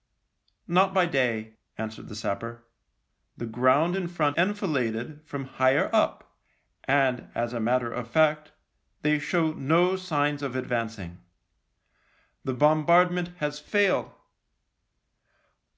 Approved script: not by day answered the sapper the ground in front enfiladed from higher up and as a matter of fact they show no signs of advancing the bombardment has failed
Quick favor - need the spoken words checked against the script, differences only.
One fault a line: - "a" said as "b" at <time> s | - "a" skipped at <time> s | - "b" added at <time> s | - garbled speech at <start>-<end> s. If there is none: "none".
none